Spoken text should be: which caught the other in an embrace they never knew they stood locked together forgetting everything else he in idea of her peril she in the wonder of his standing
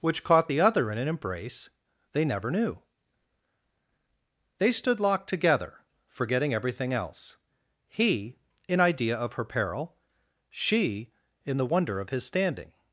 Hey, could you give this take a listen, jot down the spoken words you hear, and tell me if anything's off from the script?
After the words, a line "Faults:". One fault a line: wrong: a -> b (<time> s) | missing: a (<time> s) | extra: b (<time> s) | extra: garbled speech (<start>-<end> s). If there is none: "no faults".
which caught the other in an embrace they never knew they stood locked together forgetting everything else he in idea of her peril she in the wonder of his standing
Faults:
no faults